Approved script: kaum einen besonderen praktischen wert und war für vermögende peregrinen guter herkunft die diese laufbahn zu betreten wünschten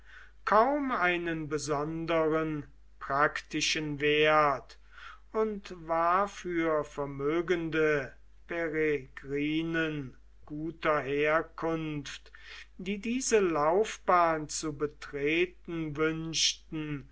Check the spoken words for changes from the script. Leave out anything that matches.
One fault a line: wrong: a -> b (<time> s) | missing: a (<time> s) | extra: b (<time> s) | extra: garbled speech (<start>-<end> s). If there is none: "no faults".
no faults